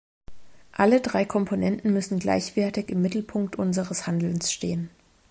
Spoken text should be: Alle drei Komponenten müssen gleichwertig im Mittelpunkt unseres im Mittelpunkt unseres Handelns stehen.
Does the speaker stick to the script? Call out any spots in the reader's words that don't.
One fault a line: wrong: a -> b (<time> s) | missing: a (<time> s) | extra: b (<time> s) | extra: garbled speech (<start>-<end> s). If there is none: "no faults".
missing: im Mittelpunkt unseres (4.1 s)